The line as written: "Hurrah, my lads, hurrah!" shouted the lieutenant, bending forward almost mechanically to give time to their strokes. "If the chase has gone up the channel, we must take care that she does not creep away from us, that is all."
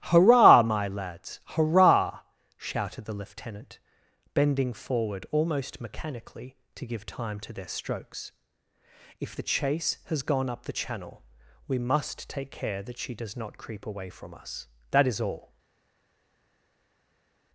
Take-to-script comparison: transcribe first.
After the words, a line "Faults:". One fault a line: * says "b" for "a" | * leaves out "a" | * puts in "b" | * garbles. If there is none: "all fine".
"Hurrah, my lads, hurrah!" shouted the lieutenant, bending forward almost mechanically to give time to their strokes. "If the chase has gone up the channel, we must take care that she does not creep away from us, that is all."
Faults:
all fine